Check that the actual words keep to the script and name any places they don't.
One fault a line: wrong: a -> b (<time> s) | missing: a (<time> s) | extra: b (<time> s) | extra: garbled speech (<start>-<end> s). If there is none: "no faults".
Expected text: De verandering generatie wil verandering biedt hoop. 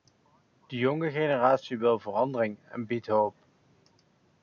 wrong: verandering -> jonge (0.8 s)
extra: en (2.7 s)